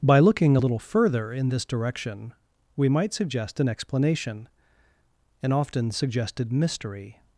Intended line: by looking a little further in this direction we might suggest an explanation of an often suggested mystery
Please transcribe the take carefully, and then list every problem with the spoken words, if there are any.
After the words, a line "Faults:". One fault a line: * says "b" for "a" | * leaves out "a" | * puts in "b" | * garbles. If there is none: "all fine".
by looking a little further in this direction we might suggest an explanation an often suggested mystery
Faults:
* leaves out "of"